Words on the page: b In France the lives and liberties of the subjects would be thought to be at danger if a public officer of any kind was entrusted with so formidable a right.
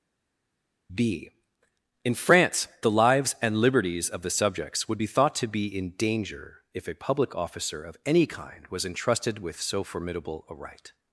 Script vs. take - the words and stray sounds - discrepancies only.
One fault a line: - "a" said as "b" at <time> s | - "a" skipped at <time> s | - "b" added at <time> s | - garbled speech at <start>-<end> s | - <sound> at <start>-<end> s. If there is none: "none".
- "at" said as "in" at 5.7 s